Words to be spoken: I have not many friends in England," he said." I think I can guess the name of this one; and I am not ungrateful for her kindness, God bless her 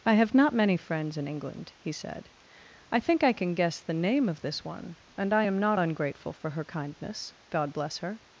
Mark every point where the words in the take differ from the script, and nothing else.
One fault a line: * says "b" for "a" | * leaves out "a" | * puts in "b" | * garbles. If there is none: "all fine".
all fine